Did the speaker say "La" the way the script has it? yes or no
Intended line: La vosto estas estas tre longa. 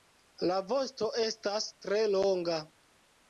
yes